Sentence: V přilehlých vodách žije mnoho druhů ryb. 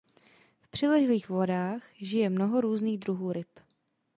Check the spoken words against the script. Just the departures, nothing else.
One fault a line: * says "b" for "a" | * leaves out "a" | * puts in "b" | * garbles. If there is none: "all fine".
* puts in "různých"